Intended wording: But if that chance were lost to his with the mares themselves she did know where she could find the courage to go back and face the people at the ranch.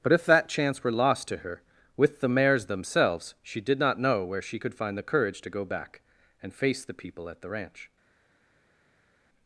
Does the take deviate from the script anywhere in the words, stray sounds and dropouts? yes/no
yes